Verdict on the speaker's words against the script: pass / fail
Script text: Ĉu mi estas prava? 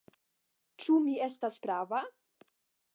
pass